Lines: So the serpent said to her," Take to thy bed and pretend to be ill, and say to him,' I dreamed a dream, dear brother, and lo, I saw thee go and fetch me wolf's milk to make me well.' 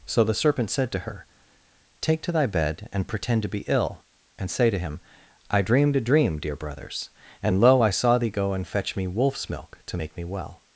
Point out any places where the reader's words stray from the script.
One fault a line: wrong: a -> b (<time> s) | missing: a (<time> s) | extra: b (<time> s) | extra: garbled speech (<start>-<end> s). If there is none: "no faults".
wrong: brother -> brothers (6.5 s)